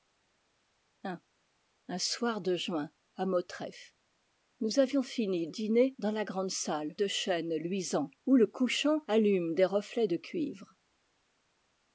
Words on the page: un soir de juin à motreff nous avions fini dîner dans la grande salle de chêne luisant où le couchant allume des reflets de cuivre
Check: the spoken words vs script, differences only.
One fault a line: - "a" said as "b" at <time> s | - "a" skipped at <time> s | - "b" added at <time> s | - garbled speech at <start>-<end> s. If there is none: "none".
none